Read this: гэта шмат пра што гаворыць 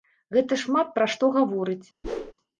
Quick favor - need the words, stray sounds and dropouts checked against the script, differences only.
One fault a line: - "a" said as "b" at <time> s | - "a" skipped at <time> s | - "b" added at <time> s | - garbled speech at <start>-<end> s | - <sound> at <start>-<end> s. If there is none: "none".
- whoosh at 2.0-2.3 s